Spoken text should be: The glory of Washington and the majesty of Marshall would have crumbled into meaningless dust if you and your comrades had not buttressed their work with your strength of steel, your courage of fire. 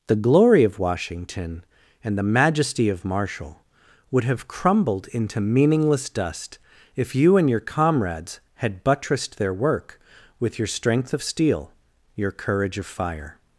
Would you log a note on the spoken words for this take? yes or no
yes